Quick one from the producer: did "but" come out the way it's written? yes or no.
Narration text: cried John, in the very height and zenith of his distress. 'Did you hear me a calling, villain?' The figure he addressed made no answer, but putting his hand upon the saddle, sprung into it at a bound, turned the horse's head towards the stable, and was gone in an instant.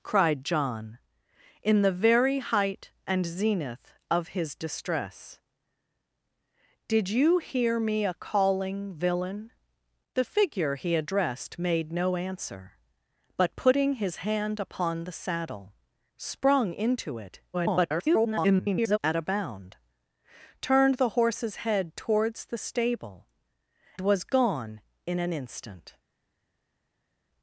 yes